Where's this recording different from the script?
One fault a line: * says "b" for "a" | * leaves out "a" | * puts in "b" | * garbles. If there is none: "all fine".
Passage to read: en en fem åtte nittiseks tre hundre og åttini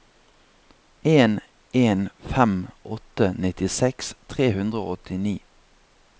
all fine